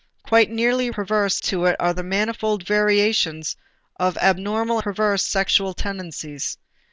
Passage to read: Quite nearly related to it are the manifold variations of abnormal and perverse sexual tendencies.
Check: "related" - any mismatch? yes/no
yes